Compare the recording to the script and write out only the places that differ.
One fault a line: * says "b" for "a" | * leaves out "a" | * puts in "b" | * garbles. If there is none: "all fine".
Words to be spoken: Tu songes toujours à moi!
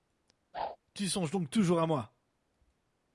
* puts in "donc"